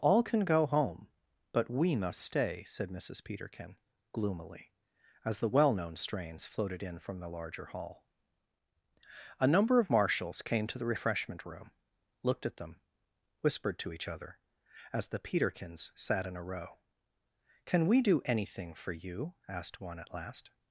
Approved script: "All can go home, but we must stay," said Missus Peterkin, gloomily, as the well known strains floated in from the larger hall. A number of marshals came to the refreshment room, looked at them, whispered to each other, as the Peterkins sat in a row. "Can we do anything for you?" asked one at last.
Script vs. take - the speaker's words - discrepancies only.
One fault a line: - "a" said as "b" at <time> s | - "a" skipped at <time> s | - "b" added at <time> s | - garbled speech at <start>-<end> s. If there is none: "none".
none